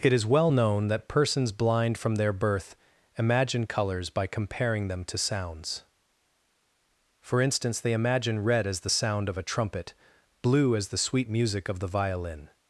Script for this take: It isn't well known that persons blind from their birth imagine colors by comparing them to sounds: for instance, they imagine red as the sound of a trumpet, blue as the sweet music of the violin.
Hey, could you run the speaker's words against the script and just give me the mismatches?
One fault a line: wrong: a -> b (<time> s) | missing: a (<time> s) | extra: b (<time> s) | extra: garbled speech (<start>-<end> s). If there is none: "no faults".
wrong: isn't -> is (0.1 s)